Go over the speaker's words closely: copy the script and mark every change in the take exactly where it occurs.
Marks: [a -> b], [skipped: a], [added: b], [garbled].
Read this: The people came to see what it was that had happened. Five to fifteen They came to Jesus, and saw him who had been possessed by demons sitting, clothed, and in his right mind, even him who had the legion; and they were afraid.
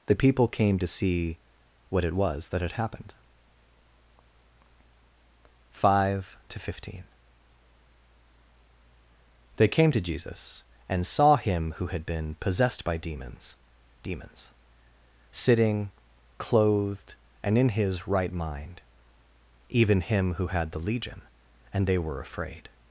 The people came to see what it was that had happened. Five to fifteen They came to Jesus, and saw him who had been possessed by demons [added: demons] sitting, clothed, and in his right mind, even him who had the legion; and they were afraid.